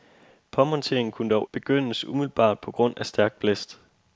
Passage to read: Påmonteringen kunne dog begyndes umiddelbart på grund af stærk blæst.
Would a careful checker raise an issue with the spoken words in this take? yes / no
no